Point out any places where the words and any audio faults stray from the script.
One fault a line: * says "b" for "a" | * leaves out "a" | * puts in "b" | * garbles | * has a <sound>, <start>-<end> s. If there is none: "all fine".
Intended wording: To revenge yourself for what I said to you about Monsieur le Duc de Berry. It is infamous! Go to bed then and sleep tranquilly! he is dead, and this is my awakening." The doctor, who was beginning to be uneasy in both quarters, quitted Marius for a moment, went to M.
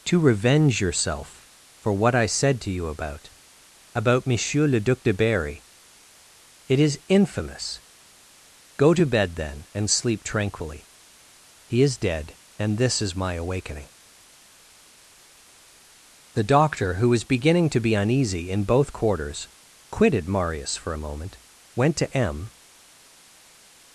* puts in "about"